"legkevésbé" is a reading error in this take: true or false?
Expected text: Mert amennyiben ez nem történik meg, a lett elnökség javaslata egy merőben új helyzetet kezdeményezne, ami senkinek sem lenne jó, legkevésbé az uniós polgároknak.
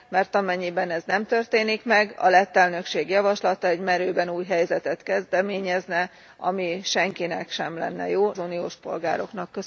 true